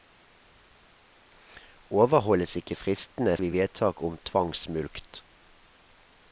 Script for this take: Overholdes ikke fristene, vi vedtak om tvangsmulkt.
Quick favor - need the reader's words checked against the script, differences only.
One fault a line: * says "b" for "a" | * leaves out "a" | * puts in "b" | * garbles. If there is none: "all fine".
all fine